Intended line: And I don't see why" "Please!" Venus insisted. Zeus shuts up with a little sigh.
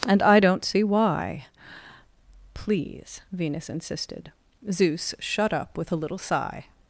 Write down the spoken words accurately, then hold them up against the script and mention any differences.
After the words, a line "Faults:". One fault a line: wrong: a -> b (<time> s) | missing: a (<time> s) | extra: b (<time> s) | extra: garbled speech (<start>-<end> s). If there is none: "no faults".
And I don't see why" "Please!" Venus insisted. Zeus shut up with a little sigh.
Faults:
wrong: shuts -> shut (5.2 s)